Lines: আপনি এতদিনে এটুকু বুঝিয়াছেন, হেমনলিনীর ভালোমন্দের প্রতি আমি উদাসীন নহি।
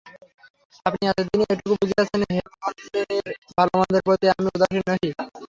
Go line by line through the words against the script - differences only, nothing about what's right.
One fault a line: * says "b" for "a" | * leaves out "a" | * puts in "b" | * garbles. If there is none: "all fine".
all fine